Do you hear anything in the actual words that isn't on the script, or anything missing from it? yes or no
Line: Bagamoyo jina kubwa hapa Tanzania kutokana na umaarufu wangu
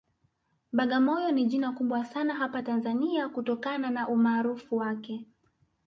yes